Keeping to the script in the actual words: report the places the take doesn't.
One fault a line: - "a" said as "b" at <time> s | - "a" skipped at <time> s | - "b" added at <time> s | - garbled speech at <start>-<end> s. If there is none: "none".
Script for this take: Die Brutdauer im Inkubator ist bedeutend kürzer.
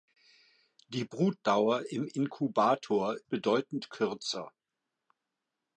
- "ist" skipped at 3.2 s